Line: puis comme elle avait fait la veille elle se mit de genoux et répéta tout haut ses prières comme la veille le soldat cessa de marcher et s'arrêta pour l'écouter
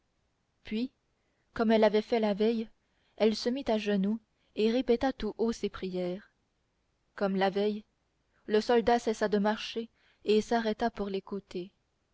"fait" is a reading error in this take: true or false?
false